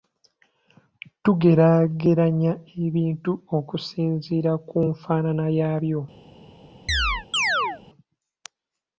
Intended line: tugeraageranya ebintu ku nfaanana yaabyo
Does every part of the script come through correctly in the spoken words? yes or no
no